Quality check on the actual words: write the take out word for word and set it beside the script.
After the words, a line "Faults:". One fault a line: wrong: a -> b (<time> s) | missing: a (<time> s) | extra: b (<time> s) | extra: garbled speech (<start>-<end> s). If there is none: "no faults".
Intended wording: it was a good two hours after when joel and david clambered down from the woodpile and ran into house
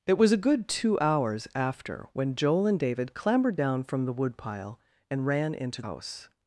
it was a good two hours after when joel and david clambered down from the woodpile and ran into house
Faults:
no faults